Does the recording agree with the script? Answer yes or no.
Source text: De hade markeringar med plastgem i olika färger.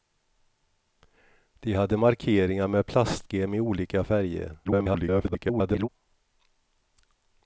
no